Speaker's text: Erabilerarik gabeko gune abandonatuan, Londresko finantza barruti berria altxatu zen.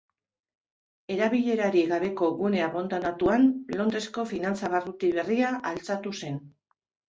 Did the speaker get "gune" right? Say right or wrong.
right